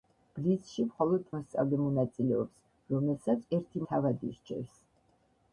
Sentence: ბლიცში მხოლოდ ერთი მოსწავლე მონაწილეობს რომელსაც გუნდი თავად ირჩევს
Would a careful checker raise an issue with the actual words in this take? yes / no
yes